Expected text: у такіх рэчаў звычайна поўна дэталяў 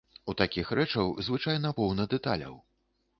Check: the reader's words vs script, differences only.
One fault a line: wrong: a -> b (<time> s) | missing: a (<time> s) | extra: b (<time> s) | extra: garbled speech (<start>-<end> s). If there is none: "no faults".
no faults